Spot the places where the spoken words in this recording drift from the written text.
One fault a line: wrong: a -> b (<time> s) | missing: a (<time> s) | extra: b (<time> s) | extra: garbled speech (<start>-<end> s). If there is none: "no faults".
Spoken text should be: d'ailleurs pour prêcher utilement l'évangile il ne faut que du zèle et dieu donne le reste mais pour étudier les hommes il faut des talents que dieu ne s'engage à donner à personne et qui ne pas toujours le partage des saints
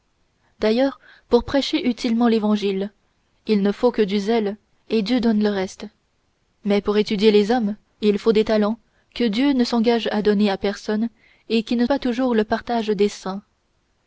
no faults